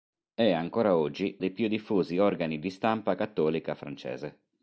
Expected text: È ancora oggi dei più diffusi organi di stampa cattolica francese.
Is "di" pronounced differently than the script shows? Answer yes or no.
no